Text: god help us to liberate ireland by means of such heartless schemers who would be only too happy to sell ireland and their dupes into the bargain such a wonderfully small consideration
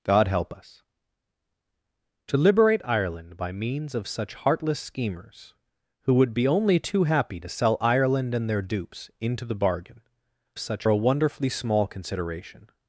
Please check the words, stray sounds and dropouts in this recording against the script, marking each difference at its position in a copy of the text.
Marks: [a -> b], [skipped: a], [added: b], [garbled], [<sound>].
god help us to liberate ireland by means of such heartless schemers who would be only too happy to sell ireland and their dupes into the bargain such a wonderfully small consideration